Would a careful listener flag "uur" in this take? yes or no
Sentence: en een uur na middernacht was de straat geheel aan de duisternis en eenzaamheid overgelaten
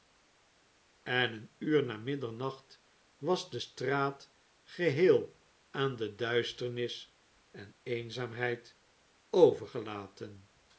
no